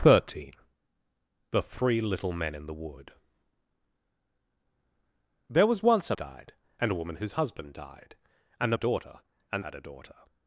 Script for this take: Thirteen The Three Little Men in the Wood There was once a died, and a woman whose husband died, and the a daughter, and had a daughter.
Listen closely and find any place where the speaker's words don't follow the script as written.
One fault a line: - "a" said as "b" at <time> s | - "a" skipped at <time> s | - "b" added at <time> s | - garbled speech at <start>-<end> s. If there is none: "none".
none